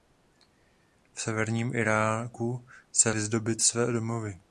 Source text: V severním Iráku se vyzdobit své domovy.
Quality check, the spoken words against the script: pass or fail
pass